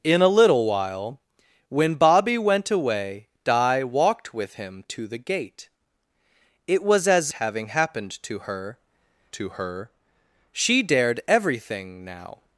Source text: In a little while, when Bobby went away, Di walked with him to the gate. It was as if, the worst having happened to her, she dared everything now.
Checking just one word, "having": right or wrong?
wrong